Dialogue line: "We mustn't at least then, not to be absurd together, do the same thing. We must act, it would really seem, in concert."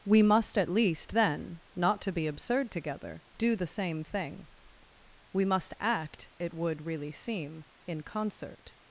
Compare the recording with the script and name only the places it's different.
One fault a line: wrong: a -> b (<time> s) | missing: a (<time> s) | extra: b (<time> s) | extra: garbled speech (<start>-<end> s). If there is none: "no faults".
wrong: mustn't -> must (0.2 s)